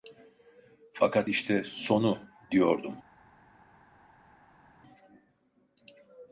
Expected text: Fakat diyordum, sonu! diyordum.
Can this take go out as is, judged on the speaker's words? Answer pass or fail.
fail